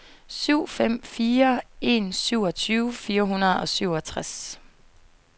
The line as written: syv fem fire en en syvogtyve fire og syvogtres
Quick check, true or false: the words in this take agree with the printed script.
false